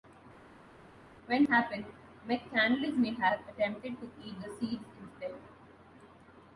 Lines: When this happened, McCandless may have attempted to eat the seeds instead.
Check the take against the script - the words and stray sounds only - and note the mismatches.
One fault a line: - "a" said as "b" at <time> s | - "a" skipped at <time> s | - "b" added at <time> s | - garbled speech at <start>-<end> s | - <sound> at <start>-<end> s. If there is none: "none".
- "this" skipped at 1.4 s